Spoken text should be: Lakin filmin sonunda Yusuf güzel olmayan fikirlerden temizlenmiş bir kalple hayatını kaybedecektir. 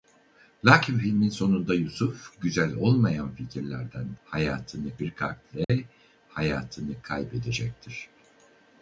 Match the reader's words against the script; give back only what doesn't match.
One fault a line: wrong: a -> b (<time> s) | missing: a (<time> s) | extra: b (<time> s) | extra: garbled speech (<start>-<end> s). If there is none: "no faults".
wrong: temizlenmiş -> hayatını (4.3 s)